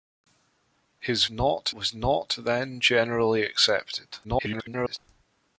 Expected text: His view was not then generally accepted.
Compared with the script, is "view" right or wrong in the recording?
wrong